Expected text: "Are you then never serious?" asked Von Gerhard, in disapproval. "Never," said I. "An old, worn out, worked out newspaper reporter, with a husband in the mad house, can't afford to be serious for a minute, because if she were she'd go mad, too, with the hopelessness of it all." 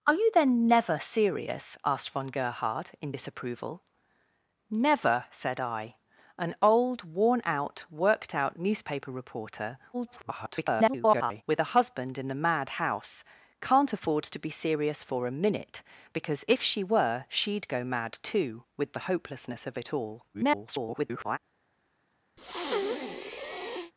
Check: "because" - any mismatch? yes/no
no